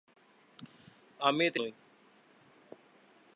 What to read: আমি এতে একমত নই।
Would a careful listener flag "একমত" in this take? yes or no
yes